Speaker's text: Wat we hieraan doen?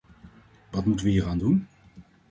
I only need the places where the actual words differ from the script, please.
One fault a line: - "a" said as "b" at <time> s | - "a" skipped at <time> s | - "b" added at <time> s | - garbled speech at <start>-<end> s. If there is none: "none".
- "moeten" added at 0.8 s